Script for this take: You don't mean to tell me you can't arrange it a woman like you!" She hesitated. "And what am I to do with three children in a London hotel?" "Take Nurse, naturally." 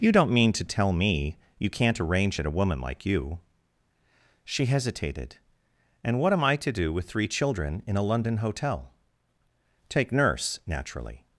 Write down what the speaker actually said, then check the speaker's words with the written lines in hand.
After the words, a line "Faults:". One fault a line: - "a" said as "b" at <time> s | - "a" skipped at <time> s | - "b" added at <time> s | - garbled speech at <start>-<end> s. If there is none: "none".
You don't mean to tell me you can't arrange it a woman like you!" She hesitated. "And what am I to do with three children in a London hotel?" "Take Nurse, naturally."
Faults:
none